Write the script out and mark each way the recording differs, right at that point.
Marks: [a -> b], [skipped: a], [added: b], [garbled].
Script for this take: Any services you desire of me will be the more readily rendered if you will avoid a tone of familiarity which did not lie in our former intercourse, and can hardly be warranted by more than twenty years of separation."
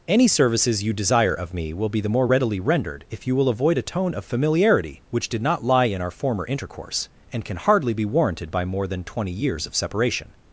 Any services you desire of me will be the more readily rendered if you will avoid a tone of familiarity which did not lie in our former intercourse, and can hardly be warranted by more than twenty years of separation."